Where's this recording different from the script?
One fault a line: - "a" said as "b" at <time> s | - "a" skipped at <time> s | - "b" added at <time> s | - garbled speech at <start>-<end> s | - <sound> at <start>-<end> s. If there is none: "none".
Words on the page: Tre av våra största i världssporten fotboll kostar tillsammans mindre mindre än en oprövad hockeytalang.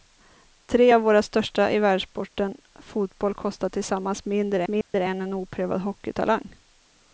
- dropout at 4.8-4.9 s